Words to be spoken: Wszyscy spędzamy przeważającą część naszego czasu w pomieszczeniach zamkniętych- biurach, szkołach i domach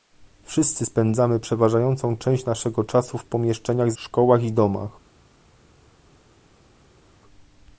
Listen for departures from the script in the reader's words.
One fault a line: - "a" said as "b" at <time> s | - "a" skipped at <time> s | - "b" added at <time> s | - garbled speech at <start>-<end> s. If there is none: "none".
- "zamkniętych biurach" skipped at 3.9 s